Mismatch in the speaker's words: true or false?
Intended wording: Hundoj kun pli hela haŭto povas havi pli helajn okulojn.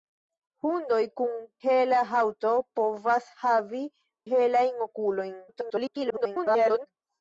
true